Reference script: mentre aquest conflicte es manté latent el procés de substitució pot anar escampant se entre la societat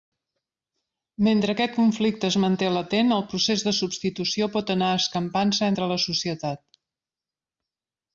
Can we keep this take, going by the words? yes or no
yes